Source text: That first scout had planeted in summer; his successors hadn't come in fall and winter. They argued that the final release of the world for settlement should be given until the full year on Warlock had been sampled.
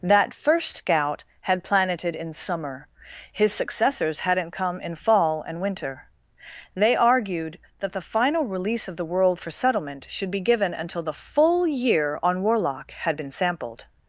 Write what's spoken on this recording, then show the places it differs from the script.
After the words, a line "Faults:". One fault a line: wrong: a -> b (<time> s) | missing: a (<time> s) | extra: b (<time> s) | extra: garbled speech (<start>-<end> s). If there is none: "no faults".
That first scout had planeted in summer; his successors hadn't come in fall and winter. They argued that the final release of the world for settlement should be given until the full year on Warlock had been sampled.
Faults:
no faults